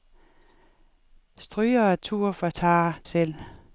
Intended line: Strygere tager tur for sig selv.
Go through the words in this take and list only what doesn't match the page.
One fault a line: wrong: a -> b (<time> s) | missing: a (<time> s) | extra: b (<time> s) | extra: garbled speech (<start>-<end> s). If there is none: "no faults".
missing: tager (2.0 s)
wrong: sig -> tager (2.5 s)